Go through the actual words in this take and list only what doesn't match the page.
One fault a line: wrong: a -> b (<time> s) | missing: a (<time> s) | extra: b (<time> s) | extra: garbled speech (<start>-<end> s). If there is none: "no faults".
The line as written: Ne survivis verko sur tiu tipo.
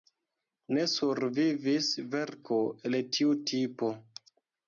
wrong: sur -> el (2.9 s)